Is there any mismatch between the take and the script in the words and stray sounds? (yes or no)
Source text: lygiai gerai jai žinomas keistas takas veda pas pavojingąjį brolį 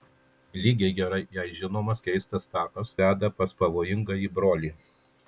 no